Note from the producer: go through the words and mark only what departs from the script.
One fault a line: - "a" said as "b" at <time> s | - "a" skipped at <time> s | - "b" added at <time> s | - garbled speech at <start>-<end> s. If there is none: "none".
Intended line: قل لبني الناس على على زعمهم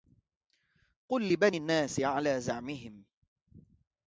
- "على" skipped at 2.4 s